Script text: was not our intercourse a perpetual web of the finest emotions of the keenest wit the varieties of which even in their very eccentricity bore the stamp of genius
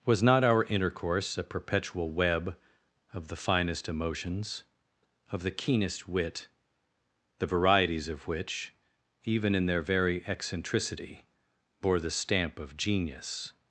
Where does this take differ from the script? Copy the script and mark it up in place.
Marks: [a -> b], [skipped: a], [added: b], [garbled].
was not our intercourse a perpetual web of the finest emotions of the keenest wit the varieties of which even in their very eccentricity bore the stamp of genius